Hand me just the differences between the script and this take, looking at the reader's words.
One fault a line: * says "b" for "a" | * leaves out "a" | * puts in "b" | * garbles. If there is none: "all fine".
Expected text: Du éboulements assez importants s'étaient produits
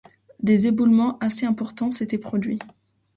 * says "Des" for "Du"